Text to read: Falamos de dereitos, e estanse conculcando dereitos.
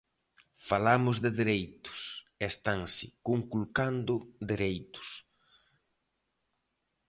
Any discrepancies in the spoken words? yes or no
no